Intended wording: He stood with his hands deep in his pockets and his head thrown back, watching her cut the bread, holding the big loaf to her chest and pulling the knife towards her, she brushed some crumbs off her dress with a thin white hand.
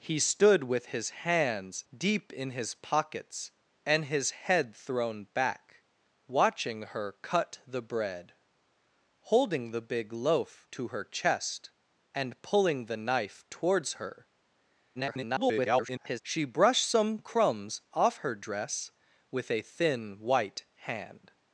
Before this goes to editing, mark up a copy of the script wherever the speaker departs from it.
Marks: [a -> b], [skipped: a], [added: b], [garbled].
He stood with his hands deep in his pockets and his head thrown back, watching her cut the bread, holding the big loaf to her chest and pulling the knife towards her, [garbled] she brushed some crumbs off her dress with a thin white hand.